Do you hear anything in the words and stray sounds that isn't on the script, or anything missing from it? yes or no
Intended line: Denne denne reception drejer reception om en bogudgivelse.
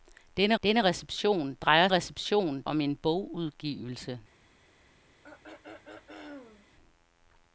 yes